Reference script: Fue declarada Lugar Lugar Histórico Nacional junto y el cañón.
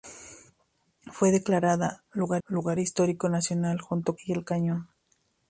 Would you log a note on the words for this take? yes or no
no